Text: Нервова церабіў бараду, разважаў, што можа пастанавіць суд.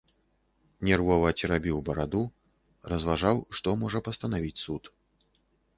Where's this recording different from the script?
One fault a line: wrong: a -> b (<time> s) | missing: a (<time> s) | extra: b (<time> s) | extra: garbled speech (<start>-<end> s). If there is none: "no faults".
no faults